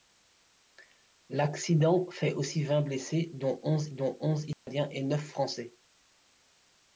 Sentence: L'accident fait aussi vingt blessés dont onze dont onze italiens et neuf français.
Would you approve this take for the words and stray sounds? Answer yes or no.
no